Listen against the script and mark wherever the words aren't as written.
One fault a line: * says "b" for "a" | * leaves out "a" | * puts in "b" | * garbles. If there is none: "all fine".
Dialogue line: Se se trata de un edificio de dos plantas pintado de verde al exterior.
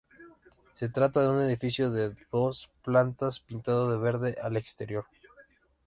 * leaves out "se"